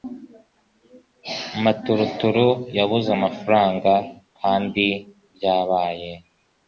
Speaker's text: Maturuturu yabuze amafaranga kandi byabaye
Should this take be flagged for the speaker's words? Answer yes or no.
no